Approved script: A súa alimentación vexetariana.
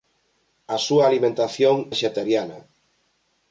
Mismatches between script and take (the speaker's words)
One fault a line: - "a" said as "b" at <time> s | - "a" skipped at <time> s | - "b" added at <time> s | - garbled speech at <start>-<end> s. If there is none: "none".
none